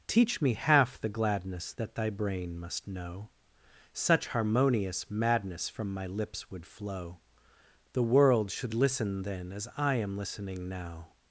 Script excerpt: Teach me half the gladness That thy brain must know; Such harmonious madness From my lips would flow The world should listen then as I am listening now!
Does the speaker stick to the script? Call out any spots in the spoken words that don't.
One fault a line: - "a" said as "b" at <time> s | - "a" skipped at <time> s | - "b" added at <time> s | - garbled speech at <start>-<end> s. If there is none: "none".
none